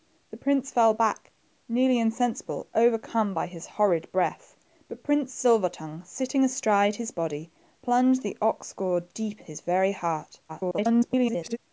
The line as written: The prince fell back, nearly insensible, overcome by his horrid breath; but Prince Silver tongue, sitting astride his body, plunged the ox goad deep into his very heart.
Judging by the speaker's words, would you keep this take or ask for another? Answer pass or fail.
fail